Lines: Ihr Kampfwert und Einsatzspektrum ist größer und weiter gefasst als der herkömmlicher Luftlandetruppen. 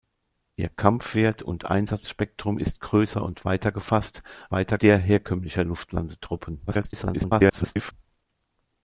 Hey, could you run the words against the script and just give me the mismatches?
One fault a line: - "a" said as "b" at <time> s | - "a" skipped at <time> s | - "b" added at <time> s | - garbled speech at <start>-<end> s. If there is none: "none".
- "als" said as "weiter" at 4.5 s
- garbled speech at 6.7-7.9 s